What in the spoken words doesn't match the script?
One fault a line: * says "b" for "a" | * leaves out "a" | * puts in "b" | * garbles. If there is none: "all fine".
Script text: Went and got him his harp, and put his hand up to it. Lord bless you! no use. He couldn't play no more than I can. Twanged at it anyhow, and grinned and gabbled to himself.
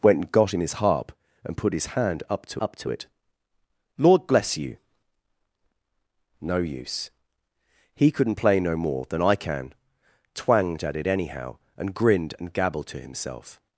* puts in "up to"